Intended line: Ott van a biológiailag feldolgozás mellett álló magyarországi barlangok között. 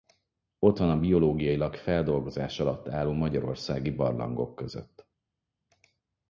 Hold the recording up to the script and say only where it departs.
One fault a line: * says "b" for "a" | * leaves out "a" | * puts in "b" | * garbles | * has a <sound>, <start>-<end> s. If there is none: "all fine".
* says "alatt" for "mellett"